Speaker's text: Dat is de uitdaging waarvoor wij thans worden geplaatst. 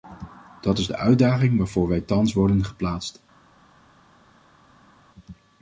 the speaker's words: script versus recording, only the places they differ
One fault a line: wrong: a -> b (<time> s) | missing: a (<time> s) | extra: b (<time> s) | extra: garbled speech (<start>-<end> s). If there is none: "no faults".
no faults